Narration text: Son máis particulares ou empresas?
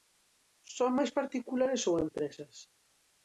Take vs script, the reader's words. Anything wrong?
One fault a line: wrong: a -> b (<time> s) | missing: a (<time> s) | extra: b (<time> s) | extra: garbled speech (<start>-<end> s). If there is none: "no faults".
no faults